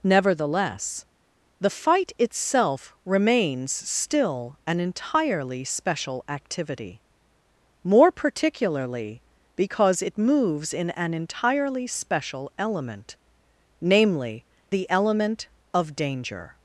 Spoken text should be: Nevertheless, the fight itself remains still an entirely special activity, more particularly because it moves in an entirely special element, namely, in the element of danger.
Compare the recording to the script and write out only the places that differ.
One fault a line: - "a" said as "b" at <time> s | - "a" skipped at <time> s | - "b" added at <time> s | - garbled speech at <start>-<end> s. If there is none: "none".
- "in" skipped at 14.4 s